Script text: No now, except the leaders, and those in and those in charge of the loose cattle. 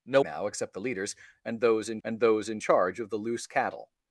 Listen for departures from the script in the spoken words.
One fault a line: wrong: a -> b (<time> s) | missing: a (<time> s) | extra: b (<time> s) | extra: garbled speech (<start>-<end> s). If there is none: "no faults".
no faults